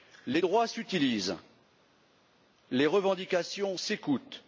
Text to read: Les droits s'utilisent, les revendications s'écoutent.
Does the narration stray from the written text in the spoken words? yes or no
no